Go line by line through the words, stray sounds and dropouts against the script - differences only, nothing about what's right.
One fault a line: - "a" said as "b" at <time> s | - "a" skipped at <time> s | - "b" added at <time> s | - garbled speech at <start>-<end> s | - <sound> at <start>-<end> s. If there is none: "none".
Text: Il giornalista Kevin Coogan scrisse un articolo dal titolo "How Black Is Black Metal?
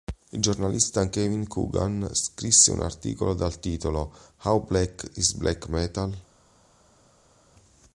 none